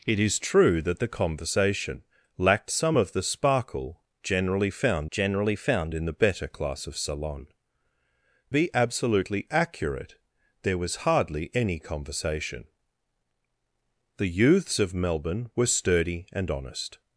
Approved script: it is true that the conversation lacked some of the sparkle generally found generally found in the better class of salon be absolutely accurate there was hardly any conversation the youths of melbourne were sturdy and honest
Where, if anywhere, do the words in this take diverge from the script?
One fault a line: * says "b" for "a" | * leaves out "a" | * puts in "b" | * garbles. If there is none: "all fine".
all fine